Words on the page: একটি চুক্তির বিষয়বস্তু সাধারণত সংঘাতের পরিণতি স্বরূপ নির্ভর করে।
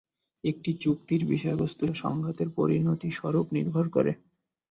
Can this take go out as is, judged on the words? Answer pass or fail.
fail